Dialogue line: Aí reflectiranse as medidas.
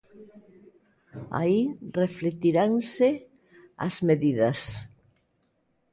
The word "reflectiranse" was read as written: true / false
true